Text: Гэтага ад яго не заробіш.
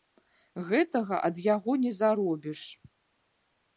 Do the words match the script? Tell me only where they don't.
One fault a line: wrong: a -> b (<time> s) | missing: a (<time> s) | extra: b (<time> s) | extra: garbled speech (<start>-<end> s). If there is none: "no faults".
no faults